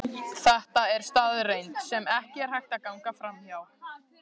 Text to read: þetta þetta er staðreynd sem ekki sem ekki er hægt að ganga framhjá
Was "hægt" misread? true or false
false